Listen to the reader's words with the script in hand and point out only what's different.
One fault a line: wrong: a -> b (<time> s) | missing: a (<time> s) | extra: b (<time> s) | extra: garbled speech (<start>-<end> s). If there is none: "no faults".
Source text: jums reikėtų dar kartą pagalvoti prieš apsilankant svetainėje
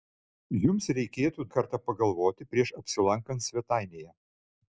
missing: dar (1.4 s)